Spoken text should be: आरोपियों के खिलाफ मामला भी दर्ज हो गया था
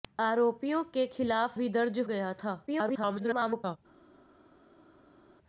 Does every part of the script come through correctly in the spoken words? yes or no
no